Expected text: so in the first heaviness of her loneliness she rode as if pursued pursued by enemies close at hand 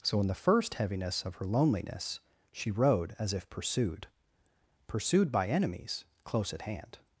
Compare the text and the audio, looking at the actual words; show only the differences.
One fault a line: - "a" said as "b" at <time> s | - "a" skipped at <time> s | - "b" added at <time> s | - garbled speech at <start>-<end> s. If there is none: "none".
none